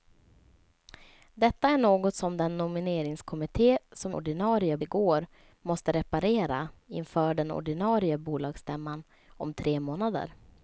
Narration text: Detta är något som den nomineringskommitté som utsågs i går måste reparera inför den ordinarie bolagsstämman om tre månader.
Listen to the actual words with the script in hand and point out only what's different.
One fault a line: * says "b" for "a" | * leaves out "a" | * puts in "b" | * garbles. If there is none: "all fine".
* says "ordinarie" for "utsågs"